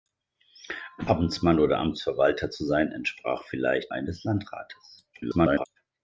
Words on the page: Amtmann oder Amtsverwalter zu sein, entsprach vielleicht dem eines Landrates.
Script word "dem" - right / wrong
wrong